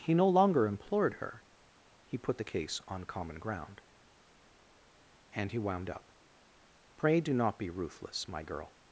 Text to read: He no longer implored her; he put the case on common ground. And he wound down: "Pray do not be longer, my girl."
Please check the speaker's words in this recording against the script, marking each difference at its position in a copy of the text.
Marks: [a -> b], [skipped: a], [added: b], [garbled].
He no longer implored her; he put the case on common ground. And he wound [down: -> up] "Pray do not be [longer, -> ruthless] my girl."